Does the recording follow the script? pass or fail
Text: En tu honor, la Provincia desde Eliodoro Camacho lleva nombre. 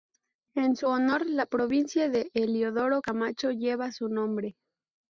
fail